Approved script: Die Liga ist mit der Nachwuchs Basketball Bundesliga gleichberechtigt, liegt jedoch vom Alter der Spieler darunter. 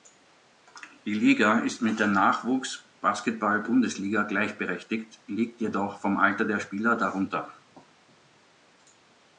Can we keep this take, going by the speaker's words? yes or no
yes